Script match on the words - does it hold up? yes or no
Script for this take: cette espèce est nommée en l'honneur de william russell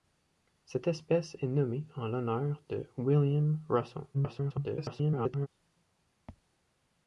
no